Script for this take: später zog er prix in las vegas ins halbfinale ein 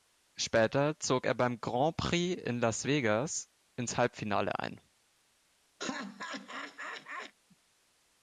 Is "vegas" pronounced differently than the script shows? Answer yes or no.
no